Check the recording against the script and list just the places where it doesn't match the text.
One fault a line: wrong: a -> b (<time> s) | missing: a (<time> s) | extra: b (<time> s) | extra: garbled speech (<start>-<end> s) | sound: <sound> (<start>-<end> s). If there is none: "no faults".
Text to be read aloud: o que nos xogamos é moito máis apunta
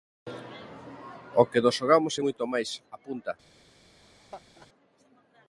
sound: laugh (4.0-4.7 s)